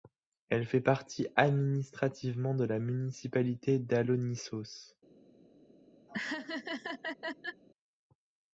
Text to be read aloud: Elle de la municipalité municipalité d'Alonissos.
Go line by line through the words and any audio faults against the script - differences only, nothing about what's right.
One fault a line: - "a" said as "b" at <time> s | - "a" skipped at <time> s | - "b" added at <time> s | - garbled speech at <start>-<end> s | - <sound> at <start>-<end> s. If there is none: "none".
- "fait partie administrativement" added at 0.7 s
- "municipalité" skipped at 3.8 s
- laugh at 6.1-7.6 s